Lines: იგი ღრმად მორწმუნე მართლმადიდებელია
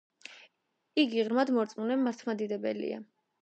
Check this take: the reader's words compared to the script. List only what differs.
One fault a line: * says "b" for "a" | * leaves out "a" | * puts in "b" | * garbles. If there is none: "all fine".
all fine